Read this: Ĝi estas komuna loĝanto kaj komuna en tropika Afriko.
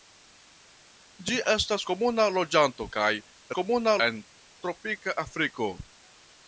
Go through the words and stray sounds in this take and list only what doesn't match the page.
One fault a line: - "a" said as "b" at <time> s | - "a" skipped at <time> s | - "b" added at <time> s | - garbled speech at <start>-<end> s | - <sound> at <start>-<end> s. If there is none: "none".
none